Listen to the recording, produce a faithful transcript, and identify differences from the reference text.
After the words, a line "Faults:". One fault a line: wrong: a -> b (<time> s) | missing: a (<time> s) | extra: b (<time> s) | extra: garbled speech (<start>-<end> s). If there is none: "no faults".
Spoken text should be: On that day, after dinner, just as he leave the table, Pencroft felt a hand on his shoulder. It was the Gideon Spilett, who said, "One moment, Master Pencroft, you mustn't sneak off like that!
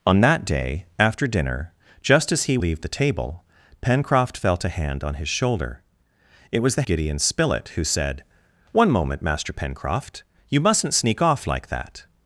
On that day, after dinner, just as he leave the table, Pencroft felt a hand on his shoulder. It was the Gideon Spilett, who said, "One moment, Master Pencroft, you mustn't sneak off like that!
Faults:
no faults